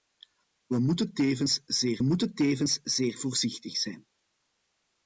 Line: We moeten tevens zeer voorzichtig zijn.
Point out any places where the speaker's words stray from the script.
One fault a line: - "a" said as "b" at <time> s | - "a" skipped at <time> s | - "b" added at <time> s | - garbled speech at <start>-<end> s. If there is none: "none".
- "moeten tevens zeer" added at 2.0 s